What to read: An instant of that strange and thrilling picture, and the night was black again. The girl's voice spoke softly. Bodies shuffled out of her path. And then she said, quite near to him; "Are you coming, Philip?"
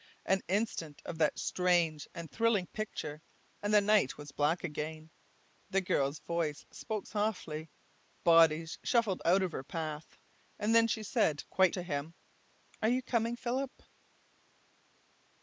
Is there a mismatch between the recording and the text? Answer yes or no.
yes